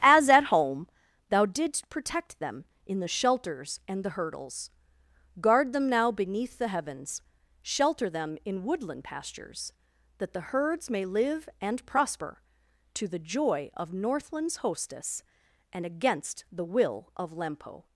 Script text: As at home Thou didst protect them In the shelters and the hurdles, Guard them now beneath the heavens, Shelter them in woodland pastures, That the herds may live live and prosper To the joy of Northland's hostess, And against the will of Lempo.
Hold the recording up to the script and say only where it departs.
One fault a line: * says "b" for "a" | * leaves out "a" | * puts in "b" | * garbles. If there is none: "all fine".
* leaves out "live"